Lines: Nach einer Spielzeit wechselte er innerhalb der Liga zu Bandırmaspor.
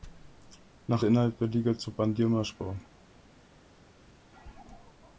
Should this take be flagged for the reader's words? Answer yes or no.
yes